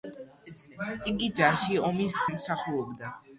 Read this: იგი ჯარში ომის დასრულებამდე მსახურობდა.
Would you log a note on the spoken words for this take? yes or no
yes